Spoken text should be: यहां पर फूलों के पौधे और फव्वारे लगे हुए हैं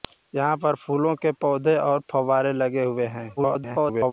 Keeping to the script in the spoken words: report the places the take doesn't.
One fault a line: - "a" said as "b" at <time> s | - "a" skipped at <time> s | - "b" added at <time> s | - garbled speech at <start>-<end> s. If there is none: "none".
- garbled speech at 3.4-4.1 s